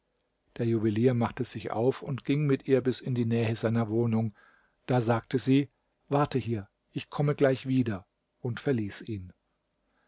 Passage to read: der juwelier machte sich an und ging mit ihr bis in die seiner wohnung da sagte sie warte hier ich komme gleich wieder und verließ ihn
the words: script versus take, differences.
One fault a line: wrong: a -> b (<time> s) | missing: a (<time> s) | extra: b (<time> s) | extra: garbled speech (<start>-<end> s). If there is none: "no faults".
wrong: an -> auf (1.7 s)
extra: nähe (3.3 s)